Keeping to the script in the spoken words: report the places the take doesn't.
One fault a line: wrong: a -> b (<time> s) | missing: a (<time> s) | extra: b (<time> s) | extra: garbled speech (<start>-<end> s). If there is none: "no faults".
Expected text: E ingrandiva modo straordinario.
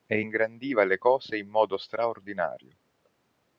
extra: le cose in (0.8 s)